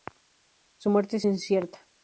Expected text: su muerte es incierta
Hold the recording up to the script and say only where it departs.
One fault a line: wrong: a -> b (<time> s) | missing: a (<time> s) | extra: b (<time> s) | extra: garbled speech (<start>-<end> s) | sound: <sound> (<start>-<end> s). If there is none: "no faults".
no faults